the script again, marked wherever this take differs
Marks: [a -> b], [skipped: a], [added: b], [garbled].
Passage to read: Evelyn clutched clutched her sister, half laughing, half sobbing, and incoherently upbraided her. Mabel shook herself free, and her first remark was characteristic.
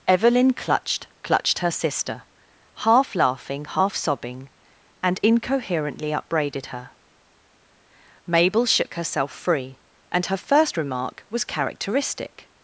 Evelyn clutched clutched her sister, half laughing, half sobbing, and incoherently upbraided her. Mabel shook herself free, and her first remark was characteristic.